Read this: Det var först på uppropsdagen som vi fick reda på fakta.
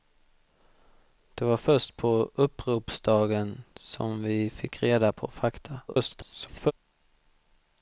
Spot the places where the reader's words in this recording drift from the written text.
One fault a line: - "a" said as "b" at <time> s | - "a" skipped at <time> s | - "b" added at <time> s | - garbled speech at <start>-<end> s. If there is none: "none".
- garbled speech at 5.9-6.7 s